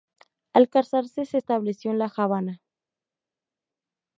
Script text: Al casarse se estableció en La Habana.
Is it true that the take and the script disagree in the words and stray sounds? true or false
false